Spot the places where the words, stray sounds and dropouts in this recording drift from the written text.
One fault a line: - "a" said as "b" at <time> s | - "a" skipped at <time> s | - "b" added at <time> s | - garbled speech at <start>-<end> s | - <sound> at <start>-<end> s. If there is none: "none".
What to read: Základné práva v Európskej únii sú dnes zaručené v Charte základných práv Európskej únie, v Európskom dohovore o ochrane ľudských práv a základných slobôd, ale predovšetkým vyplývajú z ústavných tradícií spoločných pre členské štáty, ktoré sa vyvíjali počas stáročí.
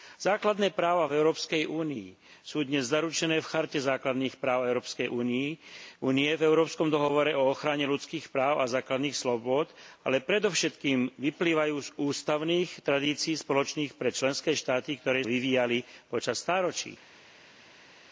- "sa" skipped at 15.2 s